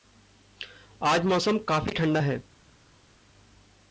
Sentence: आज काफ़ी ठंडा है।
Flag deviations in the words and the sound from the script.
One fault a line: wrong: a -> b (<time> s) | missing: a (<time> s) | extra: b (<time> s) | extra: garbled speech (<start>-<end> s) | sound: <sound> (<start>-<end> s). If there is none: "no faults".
extra: मौसम (1.2 s)